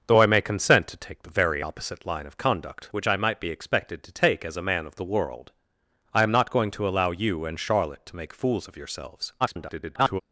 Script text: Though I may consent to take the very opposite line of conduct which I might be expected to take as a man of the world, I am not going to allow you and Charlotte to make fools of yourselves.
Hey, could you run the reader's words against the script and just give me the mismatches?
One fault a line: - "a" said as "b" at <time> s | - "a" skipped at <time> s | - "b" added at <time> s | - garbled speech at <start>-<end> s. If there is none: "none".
- garbled speech at 9.4-10.2 s